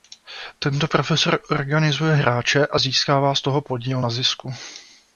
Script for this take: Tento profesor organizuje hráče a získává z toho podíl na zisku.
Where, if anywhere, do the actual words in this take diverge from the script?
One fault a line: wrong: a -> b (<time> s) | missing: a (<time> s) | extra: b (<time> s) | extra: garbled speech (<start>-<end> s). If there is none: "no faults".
no faults